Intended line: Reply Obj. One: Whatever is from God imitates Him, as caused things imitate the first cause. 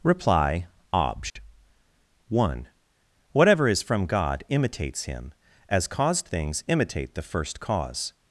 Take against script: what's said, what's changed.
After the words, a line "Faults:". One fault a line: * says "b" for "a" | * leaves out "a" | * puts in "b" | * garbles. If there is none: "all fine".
Reply Obj. One: Whatever is from God imitates Him, as caused things imitate the first cause.
Faults:
all fine